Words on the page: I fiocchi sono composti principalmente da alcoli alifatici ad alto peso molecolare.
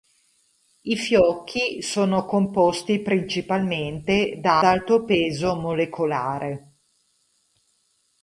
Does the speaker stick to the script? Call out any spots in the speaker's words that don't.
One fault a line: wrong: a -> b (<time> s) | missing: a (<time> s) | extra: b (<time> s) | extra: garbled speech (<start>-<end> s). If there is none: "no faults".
missing: alcoli alifatici ad (4.6 s)